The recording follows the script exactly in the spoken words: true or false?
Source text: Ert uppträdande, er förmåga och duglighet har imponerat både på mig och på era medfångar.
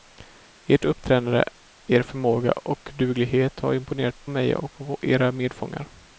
false